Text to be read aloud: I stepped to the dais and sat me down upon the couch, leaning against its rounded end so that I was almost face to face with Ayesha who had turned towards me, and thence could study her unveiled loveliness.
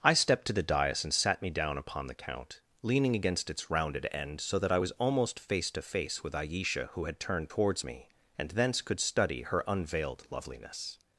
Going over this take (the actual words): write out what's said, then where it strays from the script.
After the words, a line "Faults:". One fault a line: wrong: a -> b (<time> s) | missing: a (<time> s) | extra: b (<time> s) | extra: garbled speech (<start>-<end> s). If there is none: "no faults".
I stepped to the dais and sat me down upon the count, leaning against its rounded end so that I was almost face to face with Ayesha who had turned towards me, and thence could study her unveiled loveliness.
Faults:
wrong: couch -> count (2.1 s)